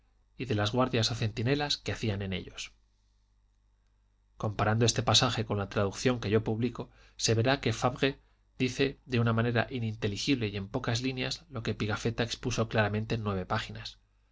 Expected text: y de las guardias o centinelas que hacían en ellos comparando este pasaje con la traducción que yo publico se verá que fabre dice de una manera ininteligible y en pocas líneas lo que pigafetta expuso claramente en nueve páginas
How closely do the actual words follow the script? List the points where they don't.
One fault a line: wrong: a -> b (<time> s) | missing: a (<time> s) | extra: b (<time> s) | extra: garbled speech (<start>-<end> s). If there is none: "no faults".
no faults